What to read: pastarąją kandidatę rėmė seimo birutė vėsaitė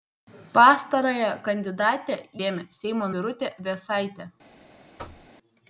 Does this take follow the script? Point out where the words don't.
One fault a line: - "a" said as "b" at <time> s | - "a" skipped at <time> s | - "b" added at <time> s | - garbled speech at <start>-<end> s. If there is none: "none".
none